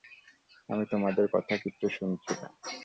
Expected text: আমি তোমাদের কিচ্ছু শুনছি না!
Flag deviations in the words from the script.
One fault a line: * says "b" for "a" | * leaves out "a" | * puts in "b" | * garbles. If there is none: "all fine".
* puts in "কথা"